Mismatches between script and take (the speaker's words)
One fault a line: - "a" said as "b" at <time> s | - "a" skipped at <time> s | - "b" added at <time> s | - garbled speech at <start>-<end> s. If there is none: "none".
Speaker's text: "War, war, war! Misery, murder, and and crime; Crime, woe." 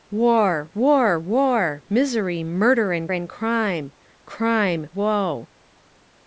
none